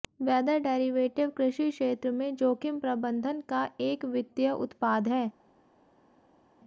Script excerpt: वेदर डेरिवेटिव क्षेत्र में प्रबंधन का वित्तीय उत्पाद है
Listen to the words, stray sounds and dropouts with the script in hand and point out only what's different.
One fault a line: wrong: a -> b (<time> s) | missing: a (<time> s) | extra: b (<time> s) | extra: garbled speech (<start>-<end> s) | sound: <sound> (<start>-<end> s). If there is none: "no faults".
extra: कृषि (1.4 s)
extra: जोखिम (2.4 s)
extra: एक (3.8 s)